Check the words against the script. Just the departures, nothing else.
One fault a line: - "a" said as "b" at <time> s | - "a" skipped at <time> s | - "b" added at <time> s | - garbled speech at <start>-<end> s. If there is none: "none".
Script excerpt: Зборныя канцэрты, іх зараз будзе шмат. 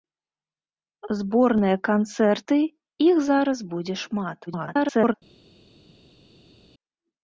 - garbled speech at 4.5-5.1 s